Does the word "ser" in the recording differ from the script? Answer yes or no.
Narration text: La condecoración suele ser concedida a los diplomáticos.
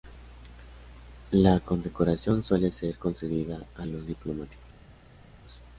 no